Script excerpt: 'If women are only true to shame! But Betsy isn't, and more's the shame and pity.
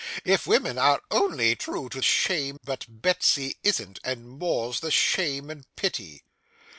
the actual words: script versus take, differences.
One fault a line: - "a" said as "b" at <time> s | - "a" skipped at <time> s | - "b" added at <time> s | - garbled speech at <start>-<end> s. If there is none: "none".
none